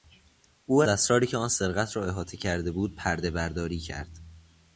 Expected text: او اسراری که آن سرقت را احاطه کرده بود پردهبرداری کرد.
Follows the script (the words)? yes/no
yes